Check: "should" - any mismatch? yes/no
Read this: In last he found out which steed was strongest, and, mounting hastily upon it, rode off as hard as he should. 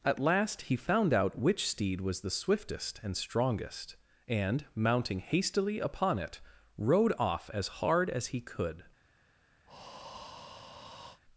yes